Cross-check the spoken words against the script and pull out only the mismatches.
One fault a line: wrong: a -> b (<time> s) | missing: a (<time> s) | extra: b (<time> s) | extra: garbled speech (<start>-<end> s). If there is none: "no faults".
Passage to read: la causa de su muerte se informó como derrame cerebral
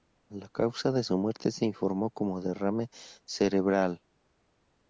no faults